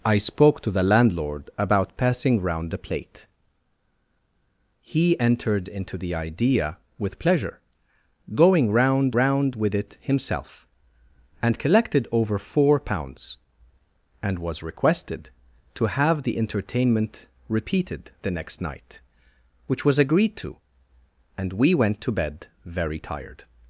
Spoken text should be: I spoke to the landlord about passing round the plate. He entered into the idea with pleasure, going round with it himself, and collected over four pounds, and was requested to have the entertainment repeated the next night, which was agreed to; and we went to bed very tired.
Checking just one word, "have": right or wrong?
right